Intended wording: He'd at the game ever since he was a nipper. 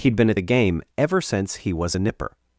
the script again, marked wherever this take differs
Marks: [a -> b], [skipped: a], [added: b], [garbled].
He'd [added: been] at the game ever since he was a nipper.